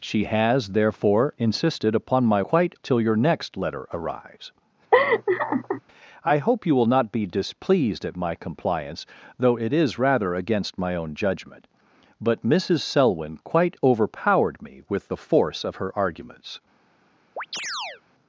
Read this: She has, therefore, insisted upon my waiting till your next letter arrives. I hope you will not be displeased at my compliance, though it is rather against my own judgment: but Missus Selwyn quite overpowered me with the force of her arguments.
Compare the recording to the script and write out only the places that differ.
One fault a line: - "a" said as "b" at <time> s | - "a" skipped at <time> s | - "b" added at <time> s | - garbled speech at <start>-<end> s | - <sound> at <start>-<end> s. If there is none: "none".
- "waiting" said as "quite" at 2.4 s
- laugh at 4.9-5.8 s
- chirp at 17.4-18.0 s